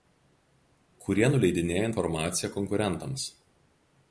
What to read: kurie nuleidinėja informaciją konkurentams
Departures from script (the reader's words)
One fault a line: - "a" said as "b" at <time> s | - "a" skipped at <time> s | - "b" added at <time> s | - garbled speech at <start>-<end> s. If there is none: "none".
none